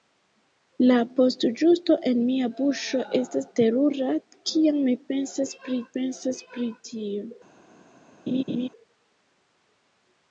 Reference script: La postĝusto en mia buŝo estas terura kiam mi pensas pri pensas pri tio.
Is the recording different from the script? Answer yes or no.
no